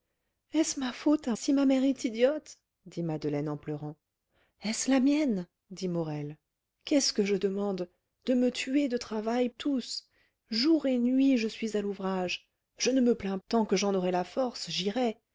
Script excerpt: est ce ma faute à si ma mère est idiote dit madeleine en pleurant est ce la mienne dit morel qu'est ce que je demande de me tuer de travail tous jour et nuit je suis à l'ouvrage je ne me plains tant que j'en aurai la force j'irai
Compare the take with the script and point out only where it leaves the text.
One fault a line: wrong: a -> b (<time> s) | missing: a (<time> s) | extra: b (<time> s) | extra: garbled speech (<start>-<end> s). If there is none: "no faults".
no faults